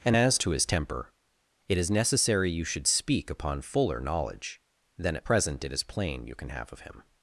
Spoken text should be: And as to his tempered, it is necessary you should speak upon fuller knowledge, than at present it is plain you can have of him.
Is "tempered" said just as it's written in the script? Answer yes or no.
no